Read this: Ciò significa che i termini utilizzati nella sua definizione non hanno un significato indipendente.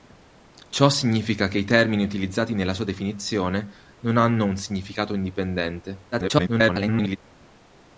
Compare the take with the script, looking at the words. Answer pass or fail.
fail